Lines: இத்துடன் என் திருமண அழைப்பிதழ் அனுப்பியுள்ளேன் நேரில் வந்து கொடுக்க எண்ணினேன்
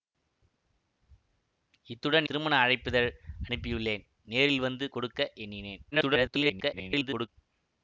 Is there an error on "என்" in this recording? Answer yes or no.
yes